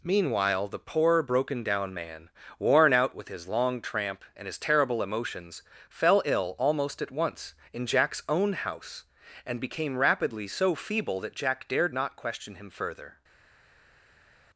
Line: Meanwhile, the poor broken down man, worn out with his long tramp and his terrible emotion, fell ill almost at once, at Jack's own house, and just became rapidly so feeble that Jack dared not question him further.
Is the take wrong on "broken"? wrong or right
right